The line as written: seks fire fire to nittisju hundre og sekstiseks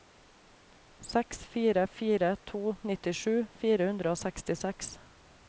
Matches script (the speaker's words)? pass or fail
fail